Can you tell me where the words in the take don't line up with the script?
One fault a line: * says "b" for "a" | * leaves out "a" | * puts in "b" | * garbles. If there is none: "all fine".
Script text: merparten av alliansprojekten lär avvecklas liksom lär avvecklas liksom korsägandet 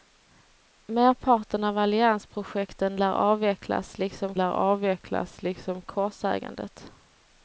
all fine